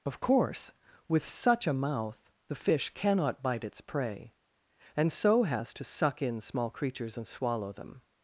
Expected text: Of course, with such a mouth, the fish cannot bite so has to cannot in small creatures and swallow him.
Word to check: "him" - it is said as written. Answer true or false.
false